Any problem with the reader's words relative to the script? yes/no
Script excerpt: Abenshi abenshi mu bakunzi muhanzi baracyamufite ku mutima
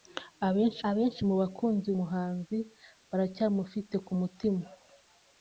no